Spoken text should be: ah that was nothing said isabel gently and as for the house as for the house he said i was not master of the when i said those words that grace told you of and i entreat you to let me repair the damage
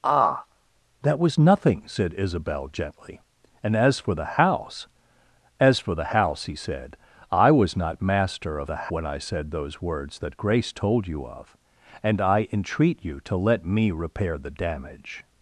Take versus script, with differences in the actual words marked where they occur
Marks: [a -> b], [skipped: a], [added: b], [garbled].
ah that was nothing said isabel gently and as for the house as for the house he said i was not master of the when i said those words that grace told you of and i entreat you to let me repair the damage